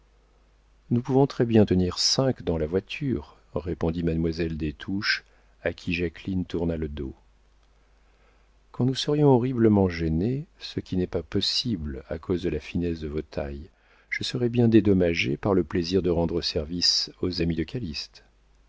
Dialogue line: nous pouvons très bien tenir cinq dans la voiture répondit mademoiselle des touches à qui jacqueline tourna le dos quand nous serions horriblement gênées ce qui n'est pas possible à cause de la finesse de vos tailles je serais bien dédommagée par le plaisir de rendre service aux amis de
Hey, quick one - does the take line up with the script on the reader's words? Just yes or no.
yes